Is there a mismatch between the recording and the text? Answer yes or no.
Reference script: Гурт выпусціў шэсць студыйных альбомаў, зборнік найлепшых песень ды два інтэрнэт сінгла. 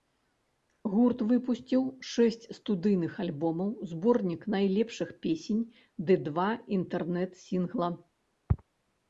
no